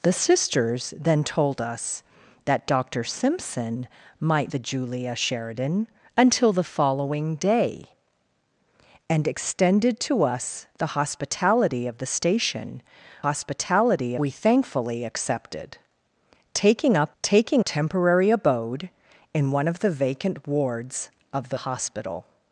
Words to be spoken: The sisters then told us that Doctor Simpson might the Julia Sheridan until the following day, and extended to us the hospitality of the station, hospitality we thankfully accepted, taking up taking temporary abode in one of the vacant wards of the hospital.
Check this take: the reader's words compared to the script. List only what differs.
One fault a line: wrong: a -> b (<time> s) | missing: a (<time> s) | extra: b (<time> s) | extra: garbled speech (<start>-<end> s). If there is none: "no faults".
no faults